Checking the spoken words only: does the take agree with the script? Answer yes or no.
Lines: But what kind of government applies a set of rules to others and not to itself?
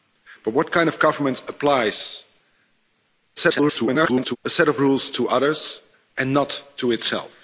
no